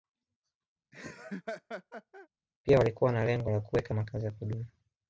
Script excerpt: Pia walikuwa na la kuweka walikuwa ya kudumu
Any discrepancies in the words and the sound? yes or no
yes